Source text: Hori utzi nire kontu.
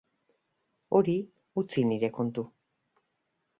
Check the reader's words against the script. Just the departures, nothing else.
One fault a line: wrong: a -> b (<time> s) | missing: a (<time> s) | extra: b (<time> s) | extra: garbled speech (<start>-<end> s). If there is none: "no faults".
no faults